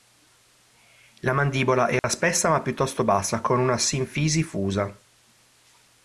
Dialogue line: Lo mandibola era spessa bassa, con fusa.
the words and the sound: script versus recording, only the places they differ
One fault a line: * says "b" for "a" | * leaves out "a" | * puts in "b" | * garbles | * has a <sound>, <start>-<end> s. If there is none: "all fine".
* says "La" for "Lo"
* has a dropout, 2.0-2.0 s
* puts in "ma piuttosto"
* puts in "una sinfisi"